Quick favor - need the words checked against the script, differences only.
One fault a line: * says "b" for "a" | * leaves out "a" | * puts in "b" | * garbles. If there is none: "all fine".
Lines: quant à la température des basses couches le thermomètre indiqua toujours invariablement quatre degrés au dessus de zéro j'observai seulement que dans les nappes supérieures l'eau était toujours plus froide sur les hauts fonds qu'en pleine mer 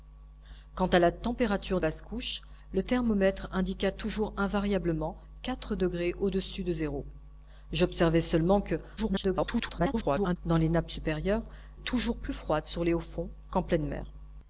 * leaves out "des"
* garbles
* leaves out "l'eau était"